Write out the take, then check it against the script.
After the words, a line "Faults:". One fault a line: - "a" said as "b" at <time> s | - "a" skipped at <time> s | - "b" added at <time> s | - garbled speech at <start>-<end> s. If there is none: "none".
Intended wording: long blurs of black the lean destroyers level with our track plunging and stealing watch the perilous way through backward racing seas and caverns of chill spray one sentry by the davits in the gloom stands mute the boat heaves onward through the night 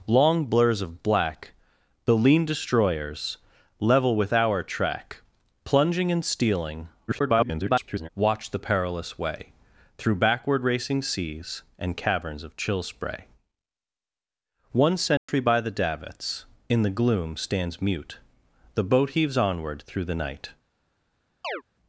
long blurs of black the lean destroyers level with our track plunging and stealing [garbled] watch the perilous way through backward racing seas and caverns of chill spray one sentry by the davits in the gloom stands mute the boat heaves onward through the night
Faults:
- garbled speech at 7.1-8.1 s